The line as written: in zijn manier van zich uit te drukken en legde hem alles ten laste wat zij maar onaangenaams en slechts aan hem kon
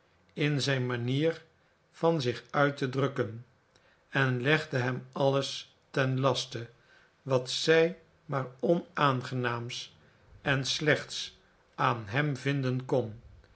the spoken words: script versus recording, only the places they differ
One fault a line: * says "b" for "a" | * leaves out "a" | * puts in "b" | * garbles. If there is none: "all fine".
* puts in "vinden"